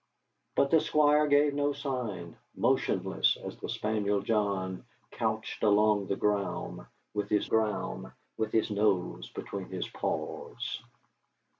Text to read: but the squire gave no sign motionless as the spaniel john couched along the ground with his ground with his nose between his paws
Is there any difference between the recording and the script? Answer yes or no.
no